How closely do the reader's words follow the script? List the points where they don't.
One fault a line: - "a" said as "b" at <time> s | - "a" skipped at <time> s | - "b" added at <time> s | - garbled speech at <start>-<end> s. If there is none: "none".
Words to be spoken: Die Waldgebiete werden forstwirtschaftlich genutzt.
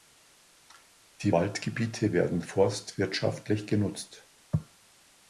none